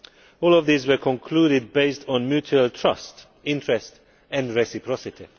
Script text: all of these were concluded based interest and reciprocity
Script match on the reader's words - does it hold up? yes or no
no